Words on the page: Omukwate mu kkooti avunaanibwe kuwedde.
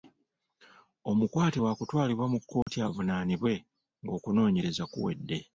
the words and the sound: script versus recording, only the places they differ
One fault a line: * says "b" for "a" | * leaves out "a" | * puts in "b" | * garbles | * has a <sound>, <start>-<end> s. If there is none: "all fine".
* puts in "waakutwalibwa"
* has a dropout, 2.6-2.7 s
* puts in "ng'okunoonyereza"